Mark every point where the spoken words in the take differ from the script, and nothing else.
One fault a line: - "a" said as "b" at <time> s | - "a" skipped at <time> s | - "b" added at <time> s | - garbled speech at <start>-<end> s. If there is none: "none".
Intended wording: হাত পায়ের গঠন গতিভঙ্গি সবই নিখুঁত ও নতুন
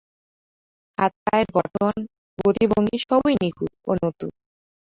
none